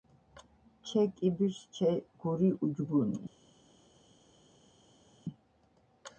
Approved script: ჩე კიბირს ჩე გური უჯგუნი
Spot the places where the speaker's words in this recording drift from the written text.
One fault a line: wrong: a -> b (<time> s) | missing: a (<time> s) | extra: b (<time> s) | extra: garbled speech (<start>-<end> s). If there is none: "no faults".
no faults